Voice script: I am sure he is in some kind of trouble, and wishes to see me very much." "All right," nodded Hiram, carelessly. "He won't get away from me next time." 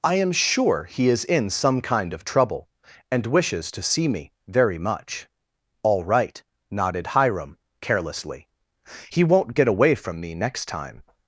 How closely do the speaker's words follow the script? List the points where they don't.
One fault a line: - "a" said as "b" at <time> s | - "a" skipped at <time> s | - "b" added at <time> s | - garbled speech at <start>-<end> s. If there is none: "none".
none